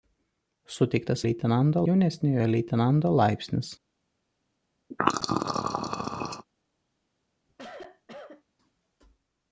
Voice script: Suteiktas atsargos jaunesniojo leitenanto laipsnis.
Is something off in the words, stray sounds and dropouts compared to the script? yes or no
yes